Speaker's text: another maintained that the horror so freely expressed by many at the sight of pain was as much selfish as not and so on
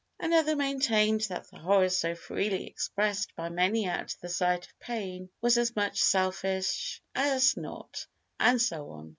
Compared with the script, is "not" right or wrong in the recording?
right